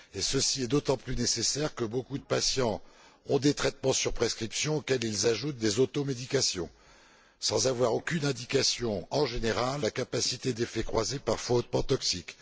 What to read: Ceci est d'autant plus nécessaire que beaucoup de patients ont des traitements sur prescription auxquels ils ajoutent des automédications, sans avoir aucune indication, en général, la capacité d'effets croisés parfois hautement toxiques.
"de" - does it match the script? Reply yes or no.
yes